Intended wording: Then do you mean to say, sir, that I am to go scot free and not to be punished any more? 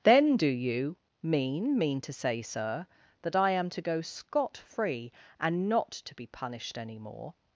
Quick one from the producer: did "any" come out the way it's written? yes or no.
yes